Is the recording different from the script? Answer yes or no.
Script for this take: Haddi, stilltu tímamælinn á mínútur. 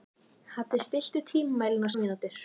no